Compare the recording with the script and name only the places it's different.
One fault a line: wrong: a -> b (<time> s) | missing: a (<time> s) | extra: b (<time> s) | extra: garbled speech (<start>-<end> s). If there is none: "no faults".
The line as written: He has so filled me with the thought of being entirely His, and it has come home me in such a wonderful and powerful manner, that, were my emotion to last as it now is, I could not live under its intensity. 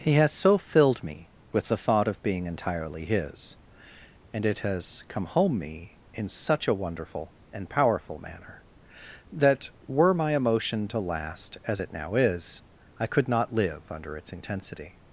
no faults